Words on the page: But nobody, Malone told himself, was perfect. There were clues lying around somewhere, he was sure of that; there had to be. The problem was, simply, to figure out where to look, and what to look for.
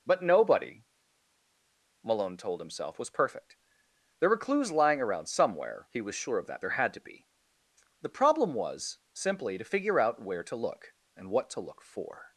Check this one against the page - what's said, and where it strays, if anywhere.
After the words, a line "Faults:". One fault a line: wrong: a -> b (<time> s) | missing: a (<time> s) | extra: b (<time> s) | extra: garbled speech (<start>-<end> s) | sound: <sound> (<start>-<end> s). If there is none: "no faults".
But nobody, Malone told himself, was perfect. There were clues lying around somewhere, he was sure of that; there had to be. The problem was, simply, to figure out where to look, and what to look for.
Faults:
no faults